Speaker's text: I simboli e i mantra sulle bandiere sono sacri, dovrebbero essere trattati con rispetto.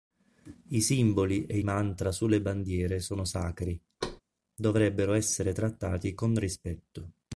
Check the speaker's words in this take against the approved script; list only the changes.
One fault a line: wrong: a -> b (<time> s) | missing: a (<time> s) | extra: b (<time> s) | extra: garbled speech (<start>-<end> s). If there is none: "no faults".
no faults